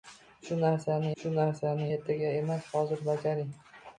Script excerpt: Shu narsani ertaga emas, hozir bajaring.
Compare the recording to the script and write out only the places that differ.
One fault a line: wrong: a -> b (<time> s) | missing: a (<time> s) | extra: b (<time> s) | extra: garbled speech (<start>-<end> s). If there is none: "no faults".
extra: shu narsani (1.2 s)